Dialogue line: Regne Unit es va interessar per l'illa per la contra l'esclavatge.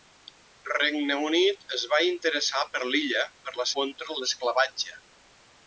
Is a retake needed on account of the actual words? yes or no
no